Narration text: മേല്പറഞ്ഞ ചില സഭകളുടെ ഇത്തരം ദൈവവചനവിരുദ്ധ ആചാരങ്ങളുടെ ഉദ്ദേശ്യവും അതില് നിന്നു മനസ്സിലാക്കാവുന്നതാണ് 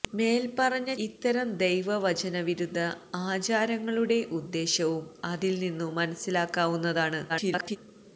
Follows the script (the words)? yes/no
no